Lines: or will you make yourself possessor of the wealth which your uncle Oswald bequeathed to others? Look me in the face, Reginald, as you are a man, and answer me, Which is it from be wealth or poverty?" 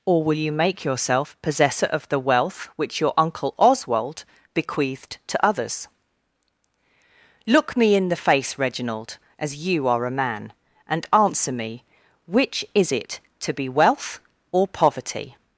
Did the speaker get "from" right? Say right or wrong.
wrong